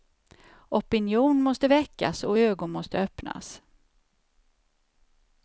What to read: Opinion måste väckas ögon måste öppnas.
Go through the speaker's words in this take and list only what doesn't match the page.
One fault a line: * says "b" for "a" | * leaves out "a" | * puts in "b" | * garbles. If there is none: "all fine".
* puts in "och"